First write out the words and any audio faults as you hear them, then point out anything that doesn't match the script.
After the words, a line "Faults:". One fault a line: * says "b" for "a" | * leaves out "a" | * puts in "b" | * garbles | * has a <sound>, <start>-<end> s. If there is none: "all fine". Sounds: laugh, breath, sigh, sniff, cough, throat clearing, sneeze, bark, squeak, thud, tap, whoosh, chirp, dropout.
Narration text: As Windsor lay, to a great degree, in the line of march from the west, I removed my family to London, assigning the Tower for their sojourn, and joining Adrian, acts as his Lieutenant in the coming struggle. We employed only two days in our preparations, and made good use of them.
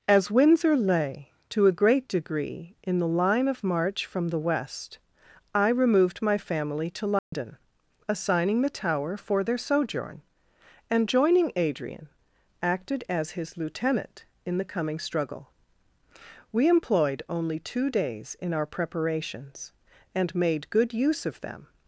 As Windsor lay, to a great degree, in the line of march from the west, I removed my family to London, assigning the Tower for their sojourn, and joining Adrian, acted as his Lieutenant in the coming struggle. We employed only two days in our preparations, and made good use of them.
Faults:
* has a dropout, 7.2-7.3 s
* says "acted" for "acts"